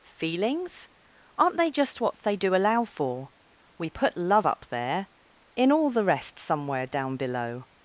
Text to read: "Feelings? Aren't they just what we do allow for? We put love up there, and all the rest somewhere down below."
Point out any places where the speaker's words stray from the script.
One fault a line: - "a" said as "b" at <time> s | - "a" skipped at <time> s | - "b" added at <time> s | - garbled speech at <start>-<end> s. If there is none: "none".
- "we" said as "they" at 2.2 s
- "and" said as "in" at 5.6 s